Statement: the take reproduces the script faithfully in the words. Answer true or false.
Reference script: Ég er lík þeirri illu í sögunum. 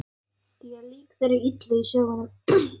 true